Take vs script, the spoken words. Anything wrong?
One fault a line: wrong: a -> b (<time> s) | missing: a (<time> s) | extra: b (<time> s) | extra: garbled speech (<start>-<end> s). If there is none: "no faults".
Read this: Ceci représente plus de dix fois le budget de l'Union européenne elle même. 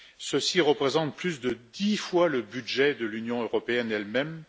no faults